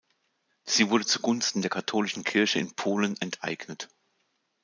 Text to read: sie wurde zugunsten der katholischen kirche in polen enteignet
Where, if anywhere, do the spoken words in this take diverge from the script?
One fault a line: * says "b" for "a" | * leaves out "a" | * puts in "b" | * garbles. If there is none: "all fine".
all fine